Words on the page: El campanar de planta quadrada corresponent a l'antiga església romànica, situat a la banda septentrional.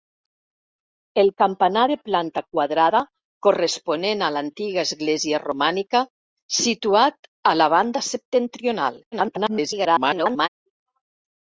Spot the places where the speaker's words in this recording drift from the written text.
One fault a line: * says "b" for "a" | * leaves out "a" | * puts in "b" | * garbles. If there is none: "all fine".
* garbles